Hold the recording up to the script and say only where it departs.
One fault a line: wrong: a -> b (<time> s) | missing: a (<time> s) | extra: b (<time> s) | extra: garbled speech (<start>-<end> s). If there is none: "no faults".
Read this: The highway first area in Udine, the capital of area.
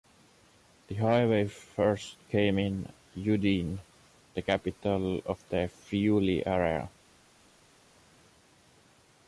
wrong: area -> came (2.3 s)
extra: the Friuli (5.5 s)